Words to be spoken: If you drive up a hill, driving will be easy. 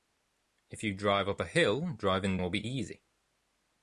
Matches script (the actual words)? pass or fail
pass